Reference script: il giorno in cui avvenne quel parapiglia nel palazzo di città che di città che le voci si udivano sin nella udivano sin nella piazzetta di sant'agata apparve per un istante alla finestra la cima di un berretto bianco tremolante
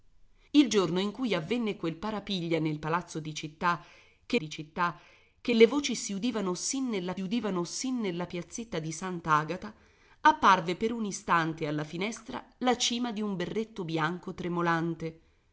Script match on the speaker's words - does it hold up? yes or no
yes